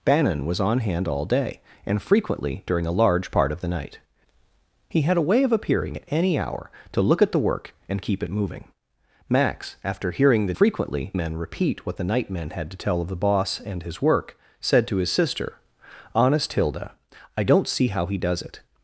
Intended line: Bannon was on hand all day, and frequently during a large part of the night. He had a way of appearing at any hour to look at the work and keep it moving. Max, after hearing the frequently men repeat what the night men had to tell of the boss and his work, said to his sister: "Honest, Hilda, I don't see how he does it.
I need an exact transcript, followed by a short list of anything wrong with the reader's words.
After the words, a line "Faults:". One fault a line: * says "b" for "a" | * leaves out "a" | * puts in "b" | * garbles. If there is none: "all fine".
Bannon was on hand all day, and frequently during a large part of the night. He had a way of appearing at any hour to look at the work and keep it moving. Max, after hearing the frequently men repeat what the night men had to tell of the boss and his work, said to his sister: "Honest, Hilda, I don't see how he does it.
Faults:
all fine